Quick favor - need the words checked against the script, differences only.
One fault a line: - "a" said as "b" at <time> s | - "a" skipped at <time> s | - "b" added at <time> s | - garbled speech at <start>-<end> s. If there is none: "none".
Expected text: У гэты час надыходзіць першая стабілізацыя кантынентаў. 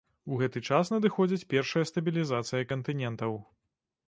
none